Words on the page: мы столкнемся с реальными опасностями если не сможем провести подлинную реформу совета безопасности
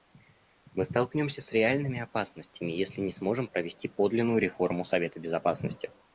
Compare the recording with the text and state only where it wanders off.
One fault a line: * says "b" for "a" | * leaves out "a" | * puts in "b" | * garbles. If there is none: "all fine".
all fine